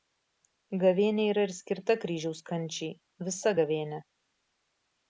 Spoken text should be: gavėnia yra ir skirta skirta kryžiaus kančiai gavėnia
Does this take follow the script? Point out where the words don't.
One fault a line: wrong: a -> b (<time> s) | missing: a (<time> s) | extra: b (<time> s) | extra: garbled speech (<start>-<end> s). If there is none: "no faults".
missing: skirta (2.0 s)
extra: visa (3.3 s)